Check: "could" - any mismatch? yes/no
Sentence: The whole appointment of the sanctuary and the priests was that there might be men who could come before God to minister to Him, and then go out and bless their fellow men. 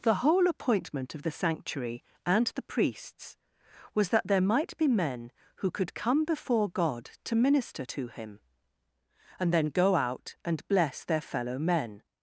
no